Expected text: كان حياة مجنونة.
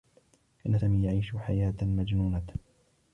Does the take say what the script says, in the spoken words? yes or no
no